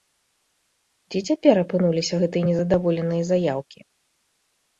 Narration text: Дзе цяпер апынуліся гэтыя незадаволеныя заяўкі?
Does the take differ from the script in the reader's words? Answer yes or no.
no